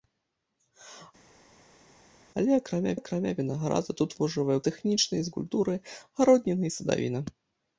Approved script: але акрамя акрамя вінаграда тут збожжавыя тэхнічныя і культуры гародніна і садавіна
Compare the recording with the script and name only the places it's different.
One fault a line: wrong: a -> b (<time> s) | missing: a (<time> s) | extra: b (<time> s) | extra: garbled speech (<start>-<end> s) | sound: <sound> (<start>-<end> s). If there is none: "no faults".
no faults